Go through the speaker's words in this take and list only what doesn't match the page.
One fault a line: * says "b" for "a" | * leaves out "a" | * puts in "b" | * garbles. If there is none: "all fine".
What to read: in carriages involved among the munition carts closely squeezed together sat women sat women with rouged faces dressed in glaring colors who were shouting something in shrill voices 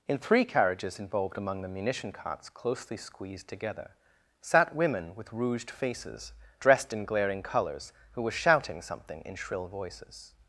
* puts in "three"
* leaves out "sat women"